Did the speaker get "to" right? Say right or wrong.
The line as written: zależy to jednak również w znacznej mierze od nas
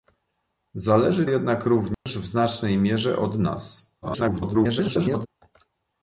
wrong